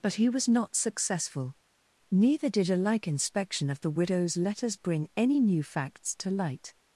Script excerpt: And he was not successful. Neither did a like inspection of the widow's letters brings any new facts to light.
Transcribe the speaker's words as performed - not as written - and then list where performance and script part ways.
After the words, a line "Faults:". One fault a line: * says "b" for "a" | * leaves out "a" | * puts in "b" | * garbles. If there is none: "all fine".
But he was not successful. Neither did a like inspection of the widow's letters bring any new facts to light.
Faults:
* says "But" for "And"
* says "bring" for "brings"